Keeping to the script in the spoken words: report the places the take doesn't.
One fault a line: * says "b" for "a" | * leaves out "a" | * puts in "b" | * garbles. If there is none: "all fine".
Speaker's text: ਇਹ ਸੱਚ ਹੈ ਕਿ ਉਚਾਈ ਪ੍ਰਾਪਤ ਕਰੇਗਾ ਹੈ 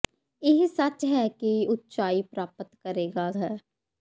all fine